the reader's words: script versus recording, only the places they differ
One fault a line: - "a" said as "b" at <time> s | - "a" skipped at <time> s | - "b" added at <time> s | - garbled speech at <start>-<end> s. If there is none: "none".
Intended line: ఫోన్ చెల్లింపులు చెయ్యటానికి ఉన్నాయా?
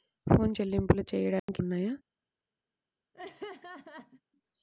none